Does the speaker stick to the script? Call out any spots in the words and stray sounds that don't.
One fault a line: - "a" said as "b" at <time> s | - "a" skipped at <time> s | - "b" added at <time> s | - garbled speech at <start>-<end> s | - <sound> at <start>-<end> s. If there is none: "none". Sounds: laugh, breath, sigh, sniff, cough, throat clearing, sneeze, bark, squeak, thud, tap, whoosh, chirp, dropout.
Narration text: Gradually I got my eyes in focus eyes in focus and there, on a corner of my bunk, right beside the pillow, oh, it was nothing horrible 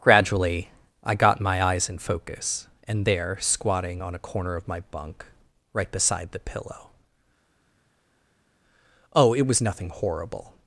- "eyes in focus" skipped at 2.7 s
- "squatting" added at 3.4 s